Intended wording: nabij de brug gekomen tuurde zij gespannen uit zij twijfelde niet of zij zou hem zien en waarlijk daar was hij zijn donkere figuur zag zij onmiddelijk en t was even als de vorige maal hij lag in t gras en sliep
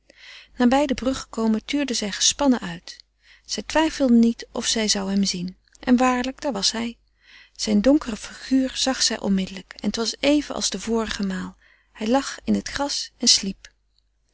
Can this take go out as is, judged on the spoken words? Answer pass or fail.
pass